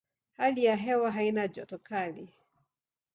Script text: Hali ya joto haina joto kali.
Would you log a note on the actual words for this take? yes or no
yes